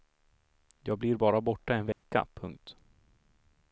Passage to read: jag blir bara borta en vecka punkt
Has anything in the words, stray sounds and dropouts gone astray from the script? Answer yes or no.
yes